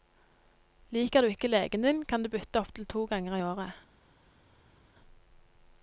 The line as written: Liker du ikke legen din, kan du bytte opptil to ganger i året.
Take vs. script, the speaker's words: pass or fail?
pass